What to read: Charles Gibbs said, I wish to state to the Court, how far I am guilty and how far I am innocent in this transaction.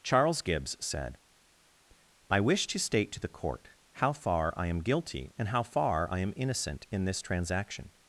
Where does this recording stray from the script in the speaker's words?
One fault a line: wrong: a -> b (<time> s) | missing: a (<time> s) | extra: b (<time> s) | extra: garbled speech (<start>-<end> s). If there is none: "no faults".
no faults